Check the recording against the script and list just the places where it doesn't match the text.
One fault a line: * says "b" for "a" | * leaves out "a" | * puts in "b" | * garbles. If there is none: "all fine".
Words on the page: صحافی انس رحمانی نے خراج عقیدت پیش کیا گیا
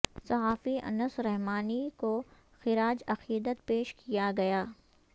* says "کو" for "نے"